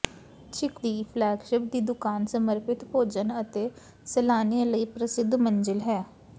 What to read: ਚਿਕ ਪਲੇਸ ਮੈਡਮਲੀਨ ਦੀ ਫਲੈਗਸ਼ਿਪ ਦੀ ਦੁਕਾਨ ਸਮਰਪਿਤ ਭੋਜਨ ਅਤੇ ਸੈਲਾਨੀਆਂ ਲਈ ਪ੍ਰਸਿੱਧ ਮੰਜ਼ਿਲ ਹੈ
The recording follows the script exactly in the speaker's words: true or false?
false